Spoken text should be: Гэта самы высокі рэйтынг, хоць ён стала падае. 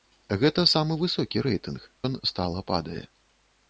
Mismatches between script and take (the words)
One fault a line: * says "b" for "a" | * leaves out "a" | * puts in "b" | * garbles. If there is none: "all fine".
* leaves out "хоць"